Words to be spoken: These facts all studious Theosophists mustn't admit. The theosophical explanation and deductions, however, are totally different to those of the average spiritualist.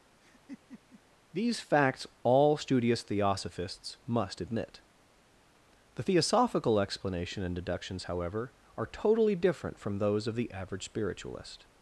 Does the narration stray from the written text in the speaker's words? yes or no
yes